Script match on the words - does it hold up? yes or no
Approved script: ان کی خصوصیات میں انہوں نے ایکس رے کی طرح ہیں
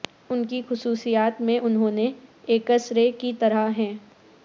yes